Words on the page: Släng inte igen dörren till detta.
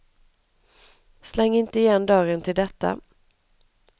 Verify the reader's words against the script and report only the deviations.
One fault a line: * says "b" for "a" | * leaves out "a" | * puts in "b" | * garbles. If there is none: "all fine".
all fine